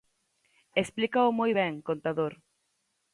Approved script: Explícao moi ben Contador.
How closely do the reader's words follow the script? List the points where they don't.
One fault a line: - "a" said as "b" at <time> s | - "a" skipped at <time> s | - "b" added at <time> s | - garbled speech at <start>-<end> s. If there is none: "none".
none